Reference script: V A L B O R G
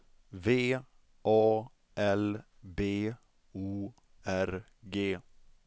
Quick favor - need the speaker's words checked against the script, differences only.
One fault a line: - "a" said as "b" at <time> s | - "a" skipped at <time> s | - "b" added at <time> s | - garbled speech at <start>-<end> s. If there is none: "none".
none